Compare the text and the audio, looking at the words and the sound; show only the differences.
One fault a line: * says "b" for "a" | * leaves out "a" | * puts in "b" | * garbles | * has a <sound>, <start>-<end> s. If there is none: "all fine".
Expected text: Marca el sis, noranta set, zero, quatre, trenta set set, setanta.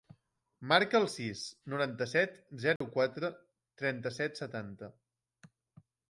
* has a dropout, 2.8-2.8 s
* leaves out "set"